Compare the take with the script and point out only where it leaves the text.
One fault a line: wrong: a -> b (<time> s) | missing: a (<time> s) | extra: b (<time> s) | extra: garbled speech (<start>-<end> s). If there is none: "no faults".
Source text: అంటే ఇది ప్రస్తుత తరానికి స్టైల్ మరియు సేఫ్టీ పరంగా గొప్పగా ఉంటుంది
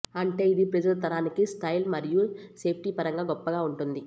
no faults